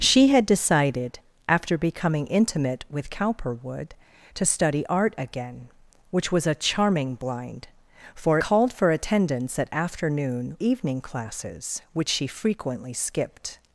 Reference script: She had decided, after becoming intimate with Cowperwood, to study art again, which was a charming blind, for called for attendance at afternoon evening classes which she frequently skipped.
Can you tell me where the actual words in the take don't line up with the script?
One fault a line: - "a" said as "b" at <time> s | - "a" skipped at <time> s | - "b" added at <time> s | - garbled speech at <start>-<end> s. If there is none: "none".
none